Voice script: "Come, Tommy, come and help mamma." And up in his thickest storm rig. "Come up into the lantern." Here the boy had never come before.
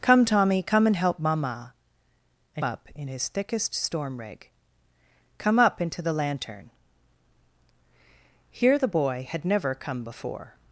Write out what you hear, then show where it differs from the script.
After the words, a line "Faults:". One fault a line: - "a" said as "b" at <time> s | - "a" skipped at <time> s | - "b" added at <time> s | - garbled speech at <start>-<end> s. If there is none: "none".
"Come, Tommy, come and help mamma." And up in his thickest storm rig. "Come up into the lantern." Here the boy had never come before.
Faults:
none